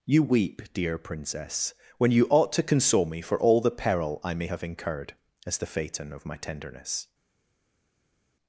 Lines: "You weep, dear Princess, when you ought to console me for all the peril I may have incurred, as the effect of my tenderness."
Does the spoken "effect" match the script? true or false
false